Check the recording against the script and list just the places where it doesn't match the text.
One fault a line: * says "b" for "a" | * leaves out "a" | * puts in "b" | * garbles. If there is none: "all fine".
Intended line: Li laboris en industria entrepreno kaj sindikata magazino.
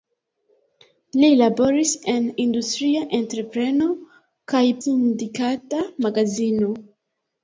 all fine